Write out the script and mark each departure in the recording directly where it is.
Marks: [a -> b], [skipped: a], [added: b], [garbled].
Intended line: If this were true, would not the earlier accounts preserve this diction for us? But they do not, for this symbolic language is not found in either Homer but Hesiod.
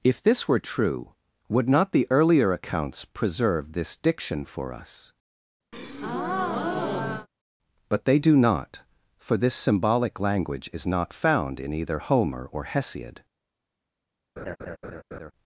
If this were true, would not the earlier accounts preserve this diction for us? But they do not, for this symbolic language is not found in either Homer [but -> or] Hesiod.